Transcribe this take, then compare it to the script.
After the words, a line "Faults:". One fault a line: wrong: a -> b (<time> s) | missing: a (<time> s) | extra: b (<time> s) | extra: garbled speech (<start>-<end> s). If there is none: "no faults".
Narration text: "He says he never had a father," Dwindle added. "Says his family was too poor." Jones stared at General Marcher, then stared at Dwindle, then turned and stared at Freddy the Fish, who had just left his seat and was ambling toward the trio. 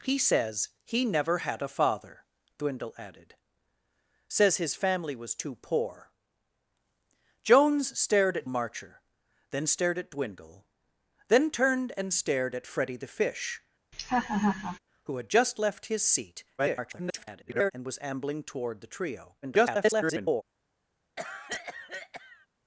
"He says he never had a father," Dwindle added. "Says his family was too poor." Jones stared at Marcher, then stared at Dwindle, then turned and stared at Freddy the Fish, who had just left his seat [garbled] and was ambling toward the trio. [garbled]
Faults:
missing: General (8.5 s)
extra: garbled speech (16.6-17.7 s)
extra: garbled speech (19.4-20.4 s)